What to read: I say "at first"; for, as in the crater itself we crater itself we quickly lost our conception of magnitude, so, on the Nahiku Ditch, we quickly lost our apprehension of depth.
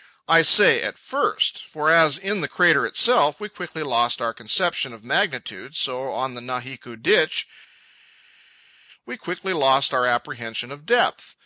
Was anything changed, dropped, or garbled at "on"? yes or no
no